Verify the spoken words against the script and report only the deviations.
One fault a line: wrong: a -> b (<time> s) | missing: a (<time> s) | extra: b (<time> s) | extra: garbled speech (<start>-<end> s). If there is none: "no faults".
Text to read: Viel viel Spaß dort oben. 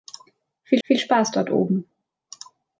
no faults